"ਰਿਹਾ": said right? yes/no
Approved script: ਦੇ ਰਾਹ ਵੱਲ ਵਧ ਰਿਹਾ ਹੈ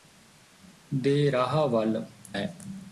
no